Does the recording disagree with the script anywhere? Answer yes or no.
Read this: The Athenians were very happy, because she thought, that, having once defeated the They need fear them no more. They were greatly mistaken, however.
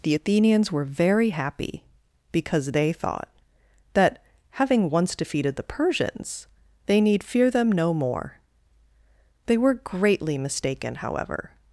yes